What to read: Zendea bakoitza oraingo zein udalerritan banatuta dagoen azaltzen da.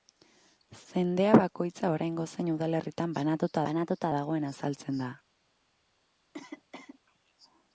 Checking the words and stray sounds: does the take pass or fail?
fail